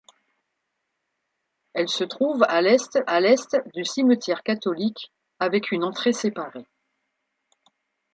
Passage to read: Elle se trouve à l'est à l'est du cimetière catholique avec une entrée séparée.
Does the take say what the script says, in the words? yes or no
yes